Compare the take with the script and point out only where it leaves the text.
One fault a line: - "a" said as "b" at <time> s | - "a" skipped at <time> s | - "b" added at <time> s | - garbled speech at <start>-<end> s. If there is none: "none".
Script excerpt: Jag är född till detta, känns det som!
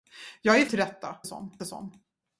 - "född" skipped at 0.7 s
- "känns" said as "som" at 1.2 s